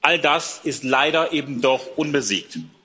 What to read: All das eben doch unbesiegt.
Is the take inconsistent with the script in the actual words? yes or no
yes